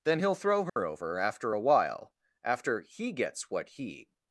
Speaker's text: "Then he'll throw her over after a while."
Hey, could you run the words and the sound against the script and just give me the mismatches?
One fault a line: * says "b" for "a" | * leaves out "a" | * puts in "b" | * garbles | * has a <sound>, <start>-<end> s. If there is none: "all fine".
* has a dropout, 0.7-0.8 s
* puts in "After he gets what he"